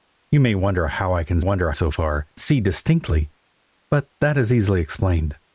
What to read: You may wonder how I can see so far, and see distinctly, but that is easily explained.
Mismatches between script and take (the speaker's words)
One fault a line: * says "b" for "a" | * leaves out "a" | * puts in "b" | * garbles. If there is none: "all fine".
* says "wonder" for "see"
* leaves out "and"